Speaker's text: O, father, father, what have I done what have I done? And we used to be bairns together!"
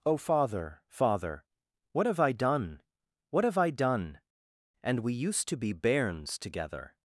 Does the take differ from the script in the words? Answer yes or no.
no